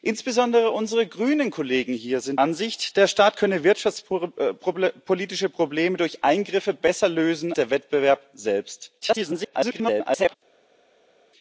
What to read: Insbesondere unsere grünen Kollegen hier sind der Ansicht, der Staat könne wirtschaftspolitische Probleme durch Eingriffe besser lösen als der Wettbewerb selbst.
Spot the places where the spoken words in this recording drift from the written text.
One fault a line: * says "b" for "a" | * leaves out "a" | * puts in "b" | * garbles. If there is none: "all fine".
* leaves out "der"
* leaves out "als"
* garbles